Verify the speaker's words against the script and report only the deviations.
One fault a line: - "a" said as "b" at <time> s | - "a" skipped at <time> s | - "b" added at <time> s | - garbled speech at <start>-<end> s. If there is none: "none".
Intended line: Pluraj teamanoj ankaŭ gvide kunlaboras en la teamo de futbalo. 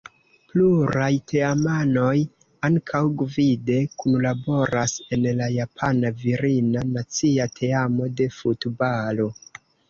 - "japana virina nacia" added at 5.6 s